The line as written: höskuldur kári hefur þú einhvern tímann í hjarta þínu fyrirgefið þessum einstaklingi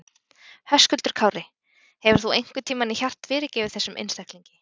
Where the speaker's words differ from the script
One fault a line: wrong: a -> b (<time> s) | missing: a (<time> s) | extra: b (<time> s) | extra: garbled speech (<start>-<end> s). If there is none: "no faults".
missing: þínu (3.3 s)